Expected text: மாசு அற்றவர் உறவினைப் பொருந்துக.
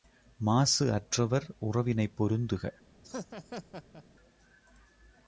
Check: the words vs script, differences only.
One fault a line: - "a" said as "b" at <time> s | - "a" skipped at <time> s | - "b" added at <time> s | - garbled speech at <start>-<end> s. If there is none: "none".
none